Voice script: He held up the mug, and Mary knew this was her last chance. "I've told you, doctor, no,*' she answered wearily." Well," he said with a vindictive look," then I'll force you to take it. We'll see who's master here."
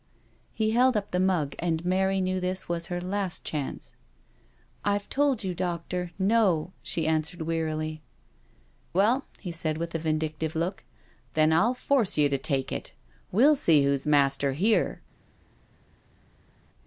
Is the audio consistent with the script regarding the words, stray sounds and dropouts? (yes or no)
yes